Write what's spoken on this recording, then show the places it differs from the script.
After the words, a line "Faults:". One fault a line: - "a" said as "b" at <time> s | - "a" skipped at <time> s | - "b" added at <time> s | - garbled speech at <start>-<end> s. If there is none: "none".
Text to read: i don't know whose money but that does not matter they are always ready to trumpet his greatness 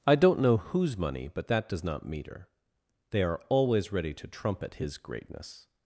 i don't know whose money but that does not meter they are always ready to trumpet his greatness
Faults:
- "matter" said as "meter" at 2.1 s